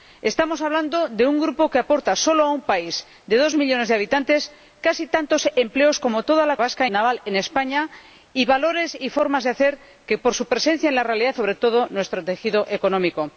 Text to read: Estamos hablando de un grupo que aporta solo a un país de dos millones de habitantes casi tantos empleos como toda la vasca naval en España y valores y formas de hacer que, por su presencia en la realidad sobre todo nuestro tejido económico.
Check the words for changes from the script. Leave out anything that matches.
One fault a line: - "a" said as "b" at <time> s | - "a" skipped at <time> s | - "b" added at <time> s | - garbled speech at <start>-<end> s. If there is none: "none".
none